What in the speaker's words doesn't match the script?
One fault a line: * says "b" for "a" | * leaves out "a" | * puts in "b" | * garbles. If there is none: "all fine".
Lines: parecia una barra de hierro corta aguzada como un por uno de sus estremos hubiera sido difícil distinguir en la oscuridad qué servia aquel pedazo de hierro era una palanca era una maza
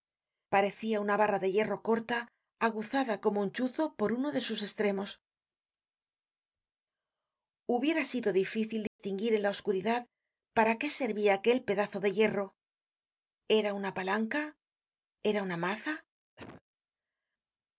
* puts in "chuzo"
* puts in "para"